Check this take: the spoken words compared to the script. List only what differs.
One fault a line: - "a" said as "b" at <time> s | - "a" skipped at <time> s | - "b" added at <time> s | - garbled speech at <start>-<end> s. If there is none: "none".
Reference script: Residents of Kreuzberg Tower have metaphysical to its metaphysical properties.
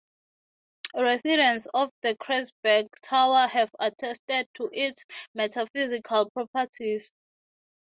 - "the" added at 2.0 s
- "metaphysical" said as "attested" at 3.8 s